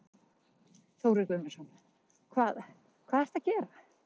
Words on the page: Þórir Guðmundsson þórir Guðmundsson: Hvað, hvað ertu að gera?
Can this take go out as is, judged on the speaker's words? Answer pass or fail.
fail